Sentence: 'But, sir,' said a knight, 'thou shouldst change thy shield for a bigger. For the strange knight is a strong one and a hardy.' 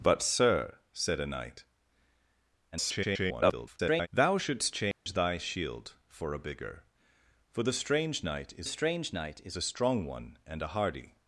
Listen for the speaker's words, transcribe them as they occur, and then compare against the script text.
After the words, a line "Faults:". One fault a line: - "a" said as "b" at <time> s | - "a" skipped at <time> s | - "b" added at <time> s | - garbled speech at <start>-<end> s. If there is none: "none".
'But, sir,' said a knight, [garbled] 'thou shouldst change thy shield for a bigger. For the strange knight is strange knight is a strong one and a hardy.'
Faults:
- garbled speech at 2.7-4.1 s
- "strange knight is" added at 8.7 s